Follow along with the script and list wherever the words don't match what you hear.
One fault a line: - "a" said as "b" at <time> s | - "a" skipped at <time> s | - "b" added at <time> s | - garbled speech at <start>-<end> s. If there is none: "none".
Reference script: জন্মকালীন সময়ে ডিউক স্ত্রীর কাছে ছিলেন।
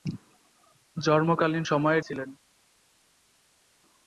- "ডিউক স্ত্রীর কাছে" skipped at 2.0 s